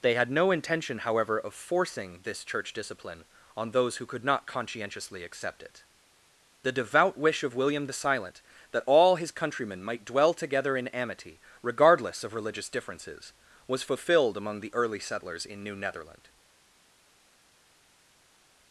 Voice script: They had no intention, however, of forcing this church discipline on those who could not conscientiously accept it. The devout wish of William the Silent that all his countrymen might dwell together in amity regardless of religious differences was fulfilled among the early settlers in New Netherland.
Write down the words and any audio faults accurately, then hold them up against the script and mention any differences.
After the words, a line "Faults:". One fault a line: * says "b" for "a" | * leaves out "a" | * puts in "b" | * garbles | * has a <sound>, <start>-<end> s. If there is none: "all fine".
They had no intention, however, of forcing this church discipline on those who could not conscientiously accept it. The devout wish of William the Silent that all his countrymen might dwell together in amity regardless of religious differences was fulfilled among the early settlers in New Netherland.
Faults:
all fine